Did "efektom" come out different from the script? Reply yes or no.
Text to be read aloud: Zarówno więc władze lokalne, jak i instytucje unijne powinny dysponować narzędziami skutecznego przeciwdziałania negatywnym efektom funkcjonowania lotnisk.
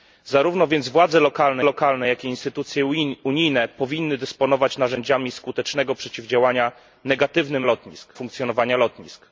yes